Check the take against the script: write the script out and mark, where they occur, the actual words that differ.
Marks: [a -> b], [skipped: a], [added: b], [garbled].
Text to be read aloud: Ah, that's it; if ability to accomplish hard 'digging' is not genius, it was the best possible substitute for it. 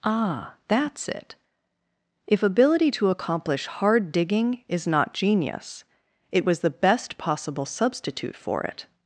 Ah, that's it; if ability to accomplish hard 'digging' is not genius, it was the best possible substitute for it.